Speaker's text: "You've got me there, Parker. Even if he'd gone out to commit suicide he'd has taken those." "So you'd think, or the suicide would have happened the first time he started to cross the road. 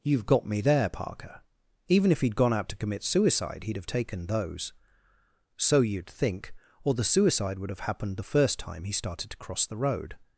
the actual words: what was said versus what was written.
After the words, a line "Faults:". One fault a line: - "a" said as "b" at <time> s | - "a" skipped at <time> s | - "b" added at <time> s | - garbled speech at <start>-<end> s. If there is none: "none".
"You've got me there, Parker. Even if he'd gone out to commit suicide he'd have taken those." "So you'd think, or the suicide would have happened the first time he started to cross the road.
Faults:
- "has" said as "have" at 3.8 s